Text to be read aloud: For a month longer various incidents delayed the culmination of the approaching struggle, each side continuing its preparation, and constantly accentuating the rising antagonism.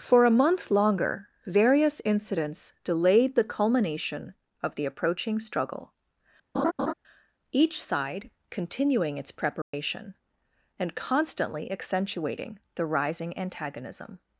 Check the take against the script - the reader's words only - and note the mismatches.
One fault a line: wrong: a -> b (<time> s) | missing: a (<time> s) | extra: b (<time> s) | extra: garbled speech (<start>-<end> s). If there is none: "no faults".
no faults